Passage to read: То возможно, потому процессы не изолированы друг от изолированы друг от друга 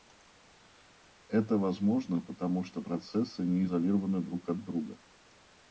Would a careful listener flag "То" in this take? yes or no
yes